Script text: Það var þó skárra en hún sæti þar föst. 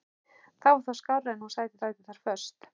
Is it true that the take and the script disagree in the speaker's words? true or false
true